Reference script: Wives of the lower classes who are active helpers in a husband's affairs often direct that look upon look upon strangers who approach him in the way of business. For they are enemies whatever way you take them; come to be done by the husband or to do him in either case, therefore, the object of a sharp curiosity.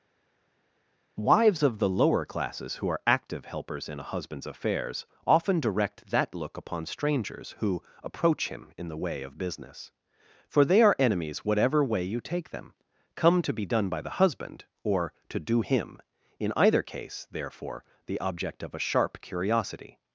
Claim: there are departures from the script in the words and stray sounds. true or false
true